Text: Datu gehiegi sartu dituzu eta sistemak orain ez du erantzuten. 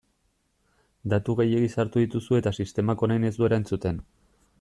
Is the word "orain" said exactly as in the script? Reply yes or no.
yes